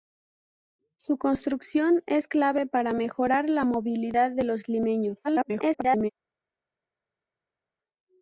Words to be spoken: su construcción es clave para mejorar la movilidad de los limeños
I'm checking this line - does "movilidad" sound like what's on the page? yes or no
yes